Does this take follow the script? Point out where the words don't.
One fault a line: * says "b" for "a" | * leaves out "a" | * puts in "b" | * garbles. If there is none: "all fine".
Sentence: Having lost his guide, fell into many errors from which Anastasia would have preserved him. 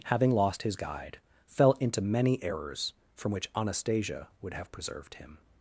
all fine